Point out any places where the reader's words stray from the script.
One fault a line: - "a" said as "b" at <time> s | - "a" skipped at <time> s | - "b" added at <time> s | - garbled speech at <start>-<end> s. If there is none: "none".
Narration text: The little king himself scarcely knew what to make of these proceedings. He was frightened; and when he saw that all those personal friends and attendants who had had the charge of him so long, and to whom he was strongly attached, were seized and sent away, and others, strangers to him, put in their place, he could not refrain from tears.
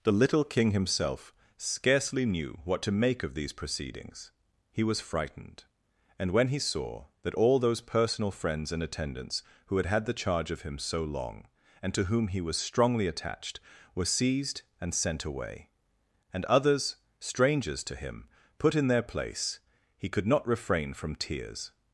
none